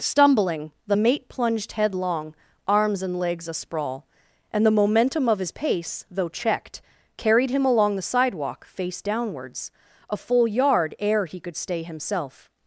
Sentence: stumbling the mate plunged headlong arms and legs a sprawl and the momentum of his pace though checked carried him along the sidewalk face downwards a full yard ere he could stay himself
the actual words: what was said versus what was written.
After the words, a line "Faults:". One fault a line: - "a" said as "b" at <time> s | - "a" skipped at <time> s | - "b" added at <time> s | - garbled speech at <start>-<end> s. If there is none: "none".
stumbling the mate plunged headlong arms and legs a sprawl and the momentum of his pace though checked carried him along the sidewalk face downwards a full yard ere he could stay himself
Faults:
none